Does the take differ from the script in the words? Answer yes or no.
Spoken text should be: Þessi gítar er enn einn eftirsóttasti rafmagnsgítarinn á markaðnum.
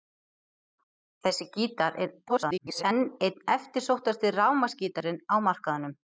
yes